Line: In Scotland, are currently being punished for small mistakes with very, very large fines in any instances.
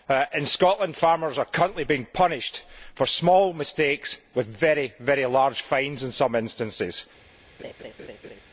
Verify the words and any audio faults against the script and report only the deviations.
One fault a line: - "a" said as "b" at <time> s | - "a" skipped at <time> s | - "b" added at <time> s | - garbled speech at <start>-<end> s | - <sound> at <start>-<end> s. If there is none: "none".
- "farmers" added at 0.9 s
- "any" said as "some" at 6.1 s
- laugh at 7.6-8.4 s